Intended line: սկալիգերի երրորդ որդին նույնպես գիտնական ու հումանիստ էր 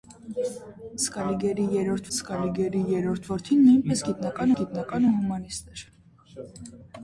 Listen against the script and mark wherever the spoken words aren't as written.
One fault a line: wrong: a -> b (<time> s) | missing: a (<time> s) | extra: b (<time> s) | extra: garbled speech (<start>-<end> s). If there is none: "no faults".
extra: սկալիգերի երրորդ (2.1 s)
extra: գիտնական (4.6 s)